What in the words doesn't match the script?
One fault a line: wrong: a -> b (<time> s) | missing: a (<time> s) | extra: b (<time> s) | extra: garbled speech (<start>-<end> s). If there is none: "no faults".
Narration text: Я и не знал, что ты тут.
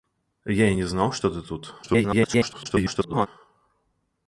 extra: garbled speech (1.8-3.3 s)